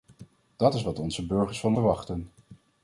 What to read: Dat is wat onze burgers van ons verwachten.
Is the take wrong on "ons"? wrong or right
wrong